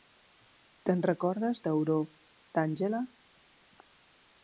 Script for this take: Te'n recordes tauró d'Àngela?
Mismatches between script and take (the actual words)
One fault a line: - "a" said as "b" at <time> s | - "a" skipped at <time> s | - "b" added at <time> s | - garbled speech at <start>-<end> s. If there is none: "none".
none